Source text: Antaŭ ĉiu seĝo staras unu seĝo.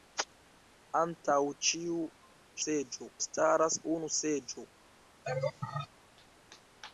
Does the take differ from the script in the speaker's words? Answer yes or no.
no